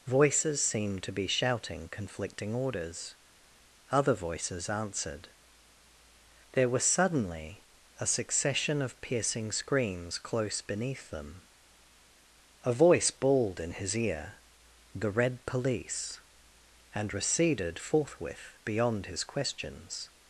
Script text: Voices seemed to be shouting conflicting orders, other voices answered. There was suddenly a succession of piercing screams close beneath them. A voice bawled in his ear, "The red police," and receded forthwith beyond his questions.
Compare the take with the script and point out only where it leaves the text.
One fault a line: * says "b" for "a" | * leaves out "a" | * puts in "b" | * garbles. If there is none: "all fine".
all fine